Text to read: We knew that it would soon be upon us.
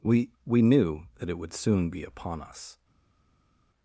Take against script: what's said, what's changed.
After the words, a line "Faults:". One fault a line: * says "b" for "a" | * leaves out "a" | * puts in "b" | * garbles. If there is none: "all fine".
We we knew that it would soon be upon us.
Faults:
* puts in "we"